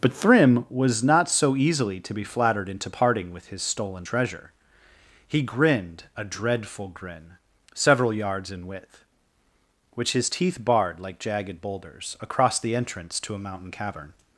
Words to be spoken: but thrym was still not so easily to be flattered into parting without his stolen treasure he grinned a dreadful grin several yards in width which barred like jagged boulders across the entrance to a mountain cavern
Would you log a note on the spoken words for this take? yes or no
yes